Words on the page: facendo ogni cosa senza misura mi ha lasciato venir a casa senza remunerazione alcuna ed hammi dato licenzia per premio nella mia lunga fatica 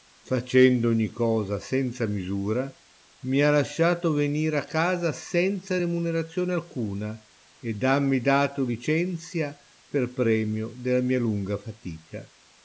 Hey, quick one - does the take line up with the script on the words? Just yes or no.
no